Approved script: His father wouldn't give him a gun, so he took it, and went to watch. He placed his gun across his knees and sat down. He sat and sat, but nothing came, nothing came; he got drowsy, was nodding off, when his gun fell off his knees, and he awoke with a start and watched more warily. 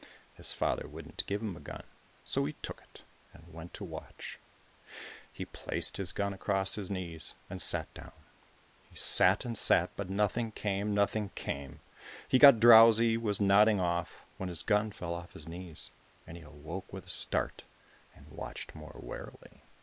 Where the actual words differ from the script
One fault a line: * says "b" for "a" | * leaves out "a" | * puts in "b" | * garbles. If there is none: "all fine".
all fine